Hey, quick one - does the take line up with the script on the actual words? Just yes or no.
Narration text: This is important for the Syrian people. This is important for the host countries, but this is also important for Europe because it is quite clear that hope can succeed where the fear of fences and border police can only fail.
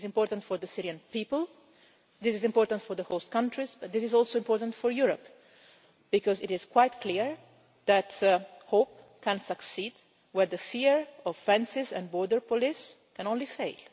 yes